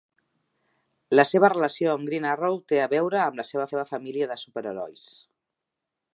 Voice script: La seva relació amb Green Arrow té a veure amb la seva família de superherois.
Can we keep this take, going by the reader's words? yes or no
no